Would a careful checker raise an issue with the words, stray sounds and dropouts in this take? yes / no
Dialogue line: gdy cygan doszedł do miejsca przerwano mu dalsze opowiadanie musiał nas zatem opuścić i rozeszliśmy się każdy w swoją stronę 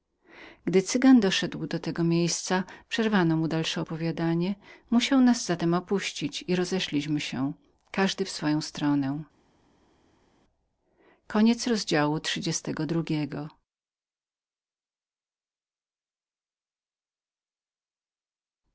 yes